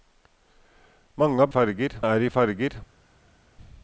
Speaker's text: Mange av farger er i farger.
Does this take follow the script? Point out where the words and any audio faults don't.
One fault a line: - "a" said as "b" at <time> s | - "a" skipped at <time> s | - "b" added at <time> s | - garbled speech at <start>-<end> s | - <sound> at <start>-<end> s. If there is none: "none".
none